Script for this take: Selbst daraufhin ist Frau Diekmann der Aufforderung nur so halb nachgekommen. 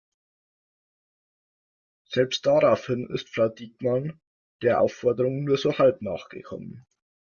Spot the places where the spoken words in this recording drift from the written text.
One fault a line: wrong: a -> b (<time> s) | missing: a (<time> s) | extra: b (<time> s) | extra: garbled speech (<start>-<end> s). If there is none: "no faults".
no faults